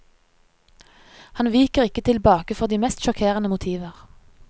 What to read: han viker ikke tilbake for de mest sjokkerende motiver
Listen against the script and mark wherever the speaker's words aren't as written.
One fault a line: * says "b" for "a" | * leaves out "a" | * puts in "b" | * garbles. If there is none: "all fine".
all fine